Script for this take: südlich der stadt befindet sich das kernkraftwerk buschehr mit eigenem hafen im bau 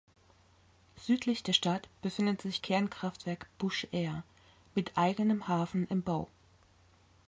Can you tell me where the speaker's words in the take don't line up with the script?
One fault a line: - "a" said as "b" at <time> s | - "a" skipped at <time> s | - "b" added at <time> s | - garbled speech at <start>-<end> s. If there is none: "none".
- "das" skipped at 2.6 s